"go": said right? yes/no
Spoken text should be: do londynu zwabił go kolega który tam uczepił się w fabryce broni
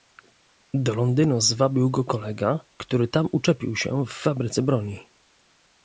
yes